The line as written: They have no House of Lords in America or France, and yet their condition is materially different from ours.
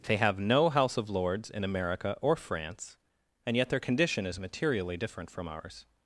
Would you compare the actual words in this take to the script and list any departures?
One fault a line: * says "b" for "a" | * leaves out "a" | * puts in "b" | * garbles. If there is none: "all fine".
all fine